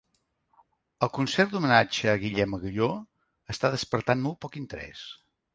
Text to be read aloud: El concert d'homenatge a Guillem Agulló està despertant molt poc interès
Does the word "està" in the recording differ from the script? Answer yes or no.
no